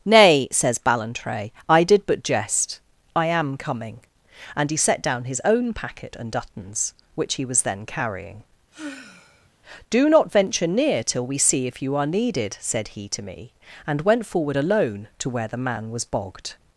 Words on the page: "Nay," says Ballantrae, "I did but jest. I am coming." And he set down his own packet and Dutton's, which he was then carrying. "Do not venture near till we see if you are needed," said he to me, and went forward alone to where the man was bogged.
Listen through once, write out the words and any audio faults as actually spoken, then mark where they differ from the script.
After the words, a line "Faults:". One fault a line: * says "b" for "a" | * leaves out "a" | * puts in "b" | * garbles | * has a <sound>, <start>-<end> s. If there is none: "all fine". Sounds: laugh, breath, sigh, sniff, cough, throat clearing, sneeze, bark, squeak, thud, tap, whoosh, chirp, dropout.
"Nay," says Ballantrae, "I did but jest. I am coming." And he set down his own packet and Dutton's, which he was then carrying. "Do not venture near till we see if you are needed," said he to me, and went forward alone to where the man was bogged.
Faults:
* has a sigh, 8.7-9.5 s